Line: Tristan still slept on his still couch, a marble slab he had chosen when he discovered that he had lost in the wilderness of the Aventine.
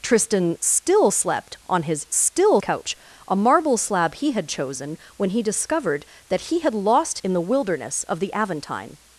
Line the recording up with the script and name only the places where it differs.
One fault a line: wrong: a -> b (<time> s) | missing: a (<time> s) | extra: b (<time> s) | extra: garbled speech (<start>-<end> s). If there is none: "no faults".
no faults